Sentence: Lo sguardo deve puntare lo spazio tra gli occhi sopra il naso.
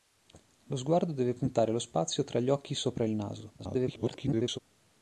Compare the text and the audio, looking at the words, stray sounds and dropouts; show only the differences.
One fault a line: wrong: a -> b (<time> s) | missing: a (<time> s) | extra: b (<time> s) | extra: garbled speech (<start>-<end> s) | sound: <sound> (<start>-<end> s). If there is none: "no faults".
extra: garbled speech (3.6-4.6 s)